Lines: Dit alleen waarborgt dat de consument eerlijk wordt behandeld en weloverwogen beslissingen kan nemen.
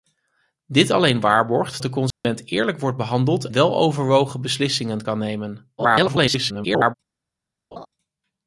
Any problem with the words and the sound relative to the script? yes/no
yes